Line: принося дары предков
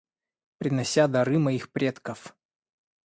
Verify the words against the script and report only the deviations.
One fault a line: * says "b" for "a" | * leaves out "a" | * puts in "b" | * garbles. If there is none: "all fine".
* puts in "моих"